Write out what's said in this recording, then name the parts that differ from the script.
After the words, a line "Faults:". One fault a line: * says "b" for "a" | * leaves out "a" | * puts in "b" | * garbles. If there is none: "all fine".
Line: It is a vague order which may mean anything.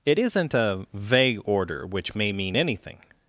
It isn't a vague order which may mean anything.
Faults:
* says "isn't" for "is"